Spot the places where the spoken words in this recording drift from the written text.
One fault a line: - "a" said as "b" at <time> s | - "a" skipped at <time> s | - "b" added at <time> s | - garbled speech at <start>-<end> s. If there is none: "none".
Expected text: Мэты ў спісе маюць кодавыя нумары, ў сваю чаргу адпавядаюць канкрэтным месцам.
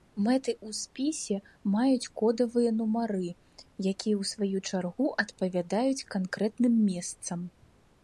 - "якія" added at 3.9 s